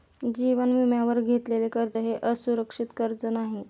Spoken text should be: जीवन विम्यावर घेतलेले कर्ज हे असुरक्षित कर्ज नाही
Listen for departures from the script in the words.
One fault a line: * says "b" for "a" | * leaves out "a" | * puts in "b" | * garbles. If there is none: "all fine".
all fine